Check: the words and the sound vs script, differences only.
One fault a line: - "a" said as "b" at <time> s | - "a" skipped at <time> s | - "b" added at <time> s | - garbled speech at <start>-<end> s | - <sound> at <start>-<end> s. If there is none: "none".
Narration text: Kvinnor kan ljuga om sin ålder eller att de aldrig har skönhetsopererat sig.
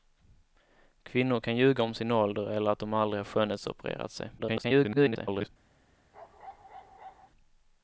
- garbled speech at 4.4-5.5 s
- bark at 6.1-7.3 s